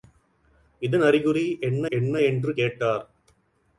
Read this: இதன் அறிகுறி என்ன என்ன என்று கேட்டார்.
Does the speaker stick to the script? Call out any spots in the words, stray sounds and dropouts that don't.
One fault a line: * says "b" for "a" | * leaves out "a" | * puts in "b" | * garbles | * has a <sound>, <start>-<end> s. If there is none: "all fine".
all fine